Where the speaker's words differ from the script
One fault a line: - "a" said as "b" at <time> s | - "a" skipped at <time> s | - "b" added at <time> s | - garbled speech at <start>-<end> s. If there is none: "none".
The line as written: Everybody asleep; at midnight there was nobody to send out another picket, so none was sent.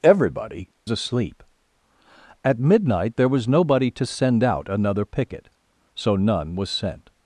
none